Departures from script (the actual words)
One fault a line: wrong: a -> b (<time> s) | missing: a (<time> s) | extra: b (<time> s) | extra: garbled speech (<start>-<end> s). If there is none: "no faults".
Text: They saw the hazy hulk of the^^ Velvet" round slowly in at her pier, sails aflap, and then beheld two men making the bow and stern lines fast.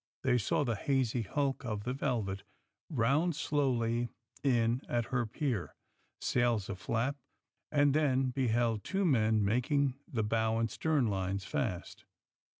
no faults